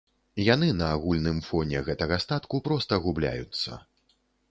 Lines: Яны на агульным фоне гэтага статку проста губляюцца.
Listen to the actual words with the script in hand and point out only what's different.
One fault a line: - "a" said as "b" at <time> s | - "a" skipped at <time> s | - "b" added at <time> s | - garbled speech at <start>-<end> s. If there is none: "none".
none